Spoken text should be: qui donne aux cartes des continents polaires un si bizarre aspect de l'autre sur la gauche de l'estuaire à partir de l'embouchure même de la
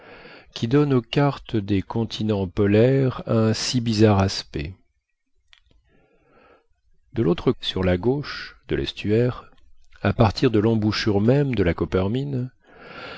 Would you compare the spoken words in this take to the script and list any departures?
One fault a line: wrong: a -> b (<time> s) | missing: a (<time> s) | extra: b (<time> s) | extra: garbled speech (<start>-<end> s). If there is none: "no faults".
no faults